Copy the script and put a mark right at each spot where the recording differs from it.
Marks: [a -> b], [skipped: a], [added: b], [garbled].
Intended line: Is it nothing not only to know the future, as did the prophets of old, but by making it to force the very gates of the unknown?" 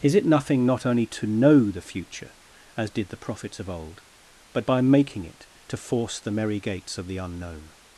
Is it nothing not only to know the future, as did the prophets of old, but by making it to force the [very -> merry] gates of the unknown?"